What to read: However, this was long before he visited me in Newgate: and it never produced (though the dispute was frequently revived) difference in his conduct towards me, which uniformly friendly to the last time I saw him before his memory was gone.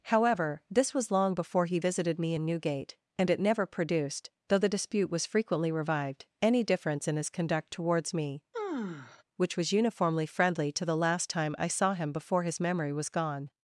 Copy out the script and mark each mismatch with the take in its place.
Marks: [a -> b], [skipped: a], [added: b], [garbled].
However, this was long before he visited me in Newgate: and it never produced (though the dispute was frequently revived) [added: any] difference in his conduct towards me, which [added: was] uniformly friendly to the last time I saw him before his memory was gone.